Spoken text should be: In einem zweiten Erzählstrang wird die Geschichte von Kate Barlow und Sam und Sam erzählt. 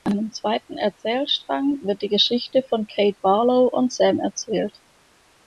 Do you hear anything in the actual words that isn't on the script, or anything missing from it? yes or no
yes